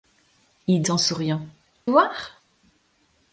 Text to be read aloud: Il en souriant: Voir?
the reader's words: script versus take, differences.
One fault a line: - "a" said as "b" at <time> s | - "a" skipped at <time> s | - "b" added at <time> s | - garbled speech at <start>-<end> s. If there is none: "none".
none